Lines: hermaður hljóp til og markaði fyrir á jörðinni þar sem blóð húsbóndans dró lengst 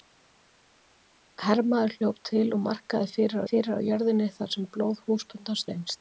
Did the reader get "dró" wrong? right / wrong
wrong